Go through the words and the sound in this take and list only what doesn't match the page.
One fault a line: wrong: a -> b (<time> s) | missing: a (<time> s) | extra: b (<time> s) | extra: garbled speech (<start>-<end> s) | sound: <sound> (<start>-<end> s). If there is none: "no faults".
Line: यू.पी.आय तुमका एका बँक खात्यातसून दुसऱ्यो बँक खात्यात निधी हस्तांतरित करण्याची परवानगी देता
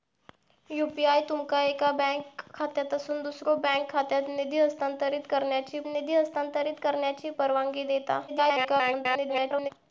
extra: निधी हस्तांतरित करण्याची (5.9 s)
extra: garbled speech (8.3-9.7 s)